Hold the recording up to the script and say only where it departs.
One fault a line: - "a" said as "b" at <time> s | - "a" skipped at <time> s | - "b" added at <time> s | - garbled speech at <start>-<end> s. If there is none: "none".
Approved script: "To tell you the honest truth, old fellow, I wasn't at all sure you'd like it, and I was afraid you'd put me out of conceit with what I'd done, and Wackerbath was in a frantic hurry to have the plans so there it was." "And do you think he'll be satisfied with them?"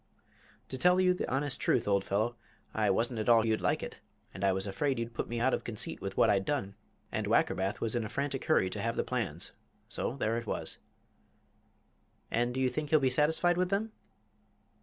- "sure" skipped at 3.4 s